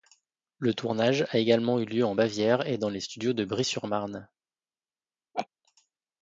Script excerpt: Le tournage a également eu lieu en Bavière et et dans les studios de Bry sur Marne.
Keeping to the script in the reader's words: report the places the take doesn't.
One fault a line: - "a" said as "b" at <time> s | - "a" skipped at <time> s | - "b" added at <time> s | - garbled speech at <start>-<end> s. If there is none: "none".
- "et" skipped at 2.8 s